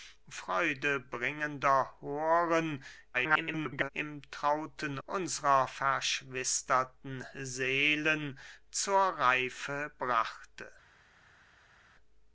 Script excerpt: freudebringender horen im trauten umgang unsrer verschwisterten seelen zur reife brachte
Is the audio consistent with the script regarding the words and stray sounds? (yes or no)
no